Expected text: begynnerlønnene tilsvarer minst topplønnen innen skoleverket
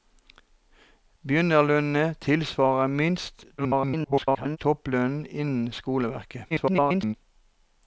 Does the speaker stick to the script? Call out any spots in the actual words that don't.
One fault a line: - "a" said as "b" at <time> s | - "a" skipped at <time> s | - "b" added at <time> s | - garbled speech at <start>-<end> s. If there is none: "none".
- garbled speech at 3.6-4.6 s
- garbled speech at 6.5-7.2 s